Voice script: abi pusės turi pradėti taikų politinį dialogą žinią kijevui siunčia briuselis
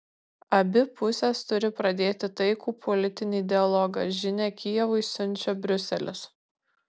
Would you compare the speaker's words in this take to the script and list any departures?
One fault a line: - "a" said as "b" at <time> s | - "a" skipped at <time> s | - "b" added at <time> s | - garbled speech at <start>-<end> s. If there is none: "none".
none